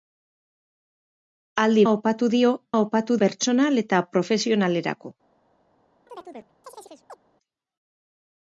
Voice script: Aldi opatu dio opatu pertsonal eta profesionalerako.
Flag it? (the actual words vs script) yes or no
no